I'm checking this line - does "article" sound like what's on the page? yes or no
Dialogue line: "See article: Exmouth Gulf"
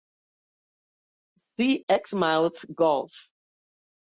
no